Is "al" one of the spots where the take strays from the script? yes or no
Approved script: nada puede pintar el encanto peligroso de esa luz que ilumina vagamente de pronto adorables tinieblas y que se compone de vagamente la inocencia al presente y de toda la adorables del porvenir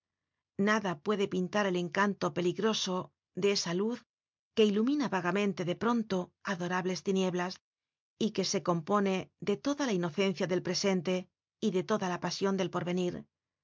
yes